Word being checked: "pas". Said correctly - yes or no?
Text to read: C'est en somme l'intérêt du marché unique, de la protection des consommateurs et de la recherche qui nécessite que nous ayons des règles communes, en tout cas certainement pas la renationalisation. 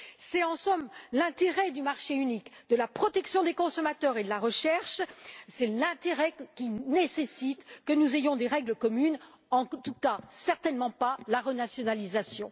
yes